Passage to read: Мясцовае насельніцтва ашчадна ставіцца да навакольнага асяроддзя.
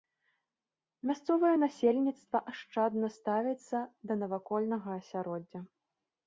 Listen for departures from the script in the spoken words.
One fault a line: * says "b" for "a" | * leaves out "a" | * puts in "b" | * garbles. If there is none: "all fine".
all fine